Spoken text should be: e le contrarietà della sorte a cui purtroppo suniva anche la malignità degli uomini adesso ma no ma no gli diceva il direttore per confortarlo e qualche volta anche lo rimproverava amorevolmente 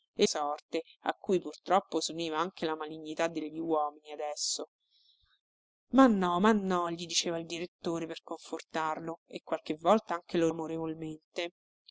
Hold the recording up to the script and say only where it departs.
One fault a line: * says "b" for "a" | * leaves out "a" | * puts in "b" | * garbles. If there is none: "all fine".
* leaves out "le contrarietà della"
* leaves out "rimproverava"